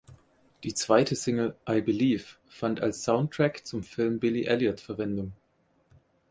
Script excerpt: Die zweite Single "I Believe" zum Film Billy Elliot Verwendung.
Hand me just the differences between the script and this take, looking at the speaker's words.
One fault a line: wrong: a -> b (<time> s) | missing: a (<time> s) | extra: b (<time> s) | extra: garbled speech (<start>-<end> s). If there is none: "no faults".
extra: fand als Soundtrack (2.5 s)